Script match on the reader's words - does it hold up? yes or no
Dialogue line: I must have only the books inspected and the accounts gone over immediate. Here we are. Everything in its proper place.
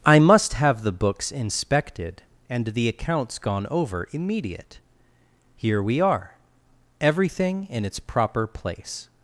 no